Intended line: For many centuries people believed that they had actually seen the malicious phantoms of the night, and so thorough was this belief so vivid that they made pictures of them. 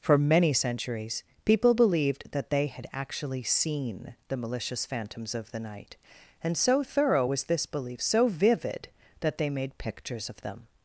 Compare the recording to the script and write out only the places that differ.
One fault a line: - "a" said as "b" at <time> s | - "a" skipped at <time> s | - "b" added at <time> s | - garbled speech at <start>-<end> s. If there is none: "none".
none